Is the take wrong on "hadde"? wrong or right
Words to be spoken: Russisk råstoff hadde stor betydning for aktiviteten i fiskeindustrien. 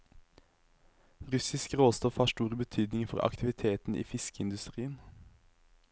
wrong